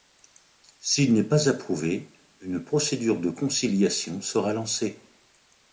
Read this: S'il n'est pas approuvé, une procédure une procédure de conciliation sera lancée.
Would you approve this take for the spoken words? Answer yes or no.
no